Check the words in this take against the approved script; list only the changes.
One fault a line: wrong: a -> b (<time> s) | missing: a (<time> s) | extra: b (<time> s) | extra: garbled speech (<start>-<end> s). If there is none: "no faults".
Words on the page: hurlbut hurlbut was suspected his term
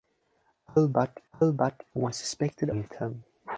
no faults